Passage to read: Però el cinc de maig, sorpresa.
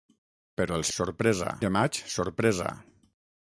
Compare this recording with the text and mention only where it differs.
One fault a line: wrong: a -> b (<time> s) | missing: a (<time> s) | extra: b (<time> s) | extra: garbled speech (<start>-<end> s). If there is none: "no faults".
wrong: cinc -> sorpresa (1.0 s)